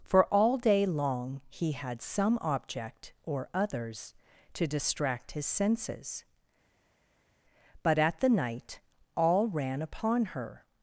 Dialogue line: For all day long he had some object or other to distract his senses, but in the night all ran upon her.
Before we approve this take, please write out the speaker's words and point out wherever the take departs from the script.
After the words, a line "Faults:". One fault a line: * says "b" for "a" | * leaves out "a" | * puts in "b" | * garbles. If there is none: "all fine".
For all day long he had some object or others to distract his senses, but at the night all ran upon her.
Faults:
* says "others" for "other"
* says "at" for "in"